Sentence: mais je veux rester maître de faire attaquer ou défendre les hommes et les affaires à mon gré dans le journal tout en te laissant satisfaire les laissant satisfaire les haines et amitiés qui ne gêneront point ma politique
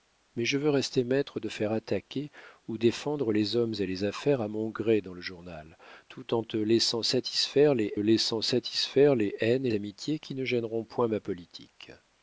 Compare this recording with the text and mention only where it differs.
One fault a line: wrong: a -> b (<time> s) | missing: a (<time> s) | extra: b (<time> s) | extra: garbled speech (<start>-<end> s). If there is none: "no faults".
no faults